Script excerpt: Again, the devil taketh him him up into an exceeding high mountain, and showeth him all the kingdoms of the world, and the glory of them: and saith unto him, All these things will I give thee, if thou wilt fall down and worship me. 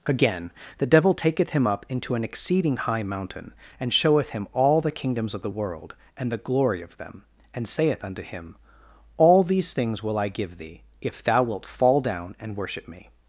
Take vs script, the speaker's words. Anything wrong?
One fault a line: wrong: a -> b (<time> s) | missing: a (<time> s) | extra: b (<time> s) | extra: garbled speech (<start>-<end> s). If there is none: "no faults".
missing: him (1.7 s)